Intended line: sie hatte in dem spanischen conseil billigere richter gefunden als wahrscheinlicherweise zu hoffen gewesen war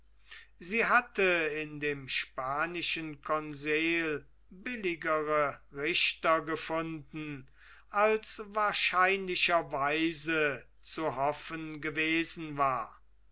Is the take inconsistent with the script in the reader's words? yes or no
no